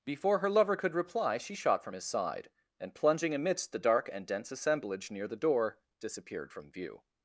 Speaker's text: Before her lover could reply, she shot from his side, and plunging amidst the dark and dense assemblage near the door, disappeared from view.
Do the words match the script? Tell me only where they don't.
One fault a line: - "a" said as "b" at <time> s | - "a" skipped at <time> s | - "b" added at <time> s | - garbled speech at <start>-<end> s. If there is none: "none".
none